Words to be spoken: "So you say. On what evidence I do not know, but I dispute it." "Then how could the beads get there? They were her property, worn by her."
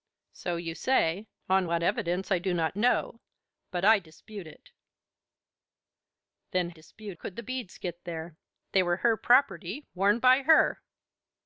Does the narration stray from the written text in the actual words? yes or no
yes